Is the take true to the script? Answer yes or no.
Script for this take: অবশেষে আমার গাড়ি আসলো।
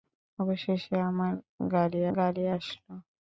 no